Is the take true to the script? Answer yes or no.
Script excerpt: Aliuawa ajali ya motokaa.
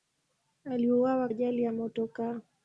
yes